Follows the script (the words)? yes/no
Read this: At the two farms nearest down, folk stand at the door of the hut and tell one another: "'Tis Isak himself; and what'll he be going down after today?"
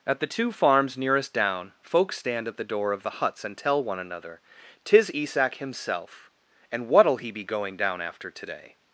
no